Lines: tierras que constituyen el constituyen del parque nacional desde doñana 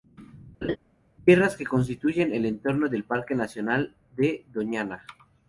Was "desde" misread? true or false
true